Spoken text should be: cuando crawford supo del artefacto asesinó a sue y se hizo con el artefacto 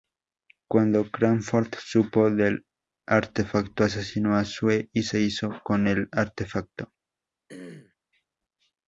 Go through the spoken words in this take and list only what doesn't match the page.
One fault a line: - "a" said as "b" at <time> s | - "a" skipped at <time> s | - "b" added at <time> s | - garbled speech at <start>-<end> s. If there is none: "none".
none